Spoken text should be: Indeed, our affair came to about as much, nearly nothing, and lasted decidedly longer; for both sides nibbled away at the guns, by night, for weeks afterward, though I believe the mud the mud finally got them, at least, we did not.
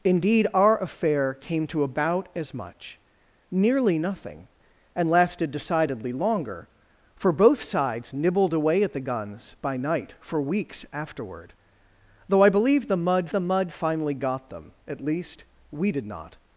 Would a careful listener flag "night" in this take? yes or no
no